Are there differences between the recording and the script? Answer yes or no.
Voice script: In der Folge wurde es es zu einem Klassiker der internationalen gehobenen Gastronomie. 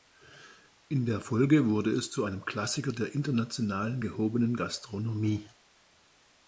yes